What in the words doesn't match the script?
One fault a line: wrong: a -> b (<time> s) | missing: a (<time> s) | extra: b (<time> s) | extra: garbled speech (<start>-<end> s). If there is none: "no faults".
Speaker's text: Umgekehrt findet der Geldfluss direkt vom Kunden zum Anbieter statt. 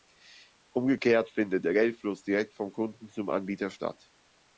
no faults